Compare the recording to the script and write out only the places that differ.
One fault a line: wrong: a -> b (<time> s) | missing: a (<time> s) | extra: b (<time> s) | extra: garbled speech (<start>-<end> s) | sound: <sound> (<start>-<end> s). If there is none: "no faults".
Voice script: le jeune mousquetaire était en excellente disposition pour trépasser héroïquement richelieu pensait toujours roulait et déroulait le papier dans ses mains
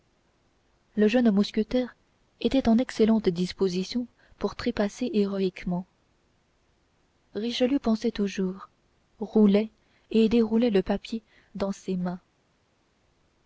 no faults